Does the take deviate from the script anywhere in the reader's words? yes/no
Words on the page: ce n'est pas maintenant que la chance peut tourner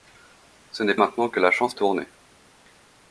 yes